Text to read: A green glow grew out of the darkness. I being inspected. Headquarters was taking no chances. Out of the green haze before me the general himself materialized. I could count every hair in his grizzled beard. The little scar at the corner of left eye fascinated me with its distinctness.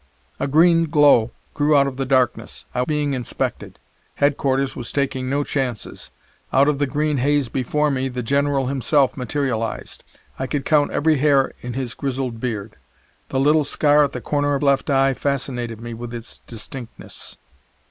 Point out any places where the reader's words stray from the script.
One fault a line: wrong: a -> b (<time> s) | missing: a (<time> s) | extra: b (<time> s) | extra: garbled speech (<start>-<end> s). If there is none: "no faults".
no faults